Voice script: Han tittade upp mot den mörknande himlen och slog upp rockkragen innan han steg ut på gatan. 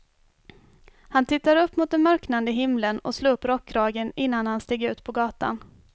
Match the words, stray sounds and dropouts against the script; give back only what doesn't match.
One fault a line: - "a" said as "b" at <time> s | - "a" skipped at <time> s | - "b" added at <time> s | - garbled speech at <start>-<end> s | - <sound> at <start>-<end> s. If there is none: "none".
none